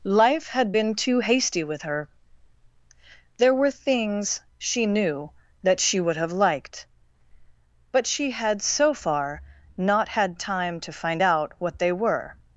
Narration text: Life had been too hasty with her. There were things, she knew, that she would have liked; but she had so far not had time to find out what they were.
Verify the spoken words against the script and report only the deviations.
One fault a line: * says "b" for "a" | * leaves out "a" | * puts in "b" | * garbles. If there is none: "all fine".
all fine